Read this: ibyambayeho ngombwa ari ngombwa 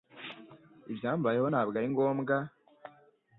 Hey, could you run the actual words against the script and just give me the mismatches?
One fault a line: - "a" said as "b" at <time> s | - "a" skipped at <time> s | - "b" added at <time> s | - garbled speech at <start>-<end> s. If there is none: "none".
- "ngombwa" said as "ntabwo" at 1.5 s